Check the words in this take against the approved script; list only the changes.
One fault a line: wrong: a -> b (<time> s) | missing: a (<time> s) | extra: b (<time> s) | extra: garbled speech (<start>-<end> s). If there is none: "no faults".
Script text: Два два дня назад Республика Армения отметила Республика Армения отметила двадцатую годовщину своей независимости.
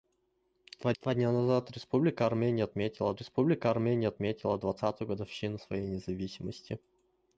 no faults